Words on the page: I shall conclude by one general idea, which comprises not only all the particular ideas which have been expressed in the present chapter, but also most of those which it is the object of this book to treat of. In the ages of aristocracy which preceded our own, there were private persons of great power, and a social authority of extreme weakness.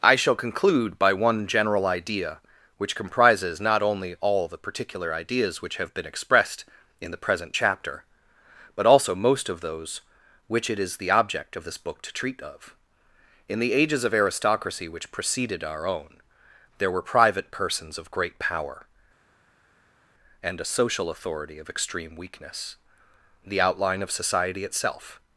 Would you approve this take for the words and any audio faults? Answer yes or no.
no